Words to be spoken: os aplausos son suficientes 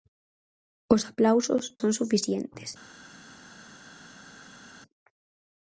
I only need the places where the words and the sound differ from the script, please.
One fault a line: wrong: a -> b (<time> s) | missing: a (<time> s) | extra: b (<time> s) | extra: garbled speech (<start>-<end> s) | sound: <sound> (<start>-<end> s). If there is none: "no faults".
no faults